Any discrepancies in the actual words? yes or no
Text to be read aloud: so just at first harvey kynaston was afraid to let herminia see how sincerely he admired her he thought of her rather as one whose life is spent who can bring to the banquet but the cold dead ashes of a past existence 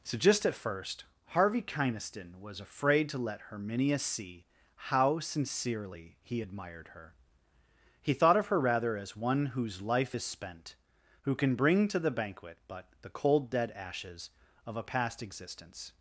no